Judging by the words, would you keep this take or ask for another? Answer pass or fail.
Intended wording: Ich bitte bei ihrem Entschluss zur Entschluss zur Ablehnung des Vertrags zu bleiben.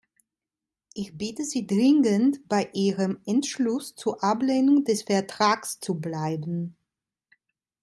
fail